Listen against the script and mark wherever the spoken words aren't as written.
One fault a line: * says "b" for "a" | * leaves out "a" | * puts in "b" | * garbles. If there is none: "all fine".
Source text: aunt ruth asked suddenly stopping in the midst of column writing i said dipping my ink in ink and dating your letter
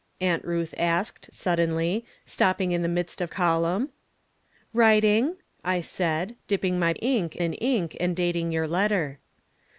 all fine